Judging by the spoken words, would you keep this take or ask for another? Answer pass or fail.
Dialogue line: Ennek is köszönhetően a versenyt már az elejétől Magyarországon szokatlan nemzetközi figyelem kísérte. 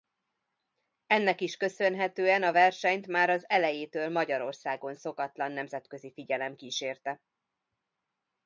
pass